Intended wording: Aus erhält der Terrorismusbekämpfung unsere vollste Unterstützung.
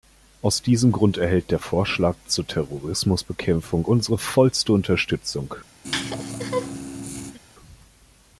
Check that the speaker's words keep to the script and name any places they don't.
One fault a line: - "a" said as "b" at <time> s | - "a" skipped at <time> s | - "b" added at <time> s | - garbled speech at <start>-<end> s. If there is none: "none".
- "diesem Grund" added at 0.6 s
- "Vorschlag zur" added at 1.6 s